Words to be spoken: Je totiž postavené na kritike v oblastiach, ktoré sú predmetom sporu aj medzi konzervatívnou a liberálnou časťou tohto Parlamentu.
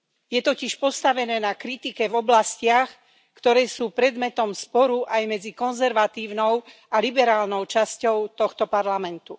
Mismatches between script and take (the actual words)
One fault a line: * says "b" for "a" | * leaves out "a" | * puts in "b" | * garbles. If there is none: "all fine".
all fine